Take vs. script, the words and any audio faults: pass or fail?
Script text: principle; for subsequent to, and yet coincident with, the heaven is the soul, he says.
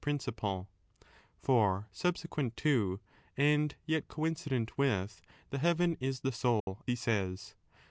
fail